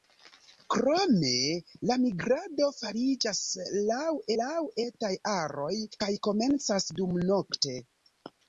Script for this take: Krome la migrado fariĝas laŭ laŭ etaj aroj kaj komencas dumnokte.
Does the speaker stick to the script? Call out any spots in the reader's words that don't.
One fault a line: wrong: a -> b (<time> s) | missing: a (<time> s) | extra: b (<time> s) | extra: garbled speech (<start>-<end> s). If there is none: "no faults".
no faults